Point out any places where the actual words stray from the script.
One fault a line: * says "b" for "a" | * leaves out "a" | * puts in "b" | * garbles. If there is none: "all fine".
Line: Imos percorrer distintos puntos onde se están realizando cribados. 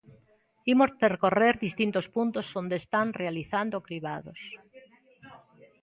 * leaves out "se"